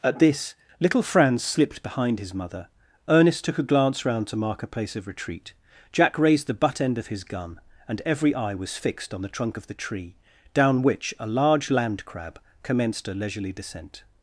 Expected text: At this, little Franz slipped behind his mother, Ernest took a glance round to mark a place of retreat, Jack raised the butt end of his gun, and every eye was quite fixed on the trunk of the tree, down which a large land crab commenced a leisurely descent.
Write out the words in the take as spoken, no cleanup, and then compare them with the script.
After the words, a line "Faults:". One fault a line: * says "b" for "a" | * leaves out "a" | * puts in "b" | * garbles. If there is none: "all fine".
At this, little Franz slipped behind his mother, Ernest took a glance round to mark a place of retreat, Jack raised the butt end of his gun, and every eye was fixed on the trunk of the tree, down which a large land crab commenced a leisurely descent.
Faults:
* leaves out "quite"